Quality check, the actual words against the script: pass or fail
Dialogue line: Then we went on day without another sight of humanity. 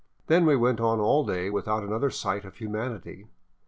fail